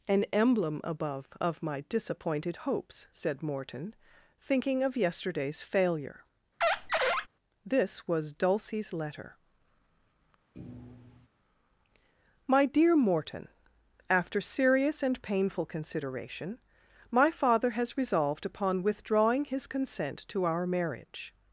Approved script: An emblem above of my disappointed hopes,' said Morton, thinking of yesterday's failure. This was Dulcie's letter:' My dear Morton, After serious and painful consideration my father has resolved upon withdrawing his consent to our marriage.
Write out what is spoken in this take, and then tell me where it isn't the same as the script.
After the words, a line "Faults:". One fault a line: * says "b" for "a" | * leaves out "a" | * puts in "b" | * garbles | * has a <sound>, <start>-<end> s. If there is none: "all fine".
An emblem above of my disappointed hopes,' said Morton, thinking of yesterday's failure. This was Dulcie's letter:' My dear Morton, After serious and painful consideration my father has resolved upon withdrawing his consent to our marriage.
Faults:
* has a squeak, 6.6-7.3 s
* has a thud, 10.5-11.3 s